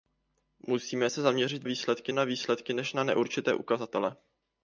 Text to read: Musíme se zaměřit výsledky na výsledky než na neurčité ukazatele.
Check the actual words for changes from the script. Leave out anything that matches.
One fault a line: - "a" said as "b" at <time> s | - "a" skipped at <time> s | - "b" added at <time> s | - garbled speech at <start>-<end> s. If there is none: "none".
none